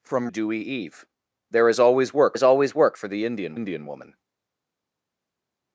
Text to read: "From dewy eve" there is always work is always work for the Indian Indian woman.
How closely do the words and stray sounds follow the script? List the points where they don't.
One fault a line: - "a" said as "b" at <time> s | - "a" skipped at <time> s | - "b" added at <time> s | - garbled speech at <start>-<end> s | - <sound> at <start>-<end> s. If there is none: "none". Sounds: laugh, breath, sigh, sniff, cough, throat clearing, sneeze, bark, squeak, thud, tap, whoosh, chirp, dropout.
none